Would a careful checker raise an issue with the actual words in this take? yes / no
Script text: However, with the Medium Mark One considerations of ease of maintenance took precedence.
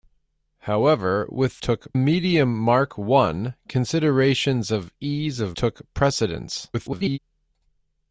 yes